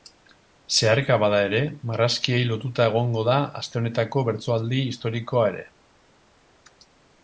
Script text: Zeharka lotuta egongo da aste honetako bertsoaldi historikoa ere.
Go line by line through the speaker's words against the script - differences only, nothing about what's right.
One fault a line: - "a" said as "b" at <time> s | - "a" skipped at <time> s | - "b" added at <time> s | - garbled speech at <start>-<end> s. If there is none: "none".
- "bada ere marrazkiei" added at 1.2 s